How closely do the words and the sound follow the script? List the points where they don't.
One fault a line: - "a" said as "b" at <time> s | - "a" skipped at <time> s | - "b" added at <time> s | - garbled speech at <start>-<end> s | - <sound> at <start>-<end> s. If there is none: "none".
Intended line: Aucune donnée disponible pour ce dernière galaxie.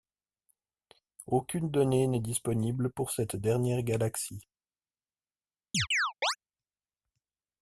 - "n'est" added at 2.1 s
- "ce" said as "cette" at 3.1 s
- chirp at 5.7-6.4 s